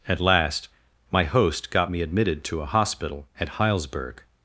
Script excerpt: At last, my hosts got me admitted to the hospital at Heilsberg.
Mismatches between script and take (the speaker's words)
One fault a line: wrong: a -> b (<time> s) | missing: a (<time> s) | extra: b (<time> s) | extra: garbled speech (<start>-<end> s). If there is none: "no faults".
wrong: hosts -> host (1.2 s)
wrong: the -> a (2.6 s)